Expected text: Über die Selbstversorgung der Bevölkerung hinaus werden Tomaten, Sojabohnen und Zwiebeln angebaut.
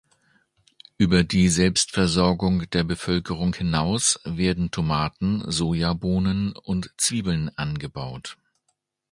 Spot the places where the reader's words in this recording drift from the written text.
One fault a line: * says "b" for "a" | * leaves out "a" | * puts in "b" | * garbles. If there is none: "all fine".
all fine